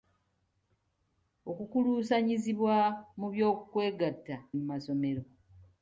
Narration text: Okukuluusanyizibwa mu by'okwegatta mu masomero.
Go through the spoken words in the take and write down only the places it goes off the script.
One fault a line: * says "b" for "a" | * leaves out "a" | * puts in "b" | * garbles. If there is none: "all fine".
all fine